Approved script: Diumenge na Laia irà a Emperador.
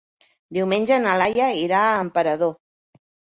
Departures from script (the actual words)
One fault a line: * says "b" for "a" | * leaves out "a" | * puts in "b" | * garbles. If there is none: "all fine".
all fine